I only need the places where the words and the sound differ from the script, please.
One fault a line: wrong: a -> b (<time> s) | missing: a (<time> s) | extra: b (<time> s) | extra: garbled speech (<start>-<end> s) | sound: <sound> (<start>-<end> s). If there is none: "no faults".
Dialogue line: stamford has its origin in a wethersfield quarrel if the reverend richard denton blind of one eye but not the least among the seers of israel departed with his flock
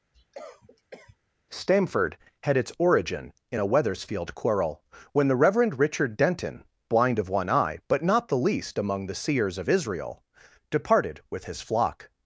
sound: cough (0.1-1.2 s)
wrong: has -> had (2.4 s)
wrong: if -> when (5.1 s)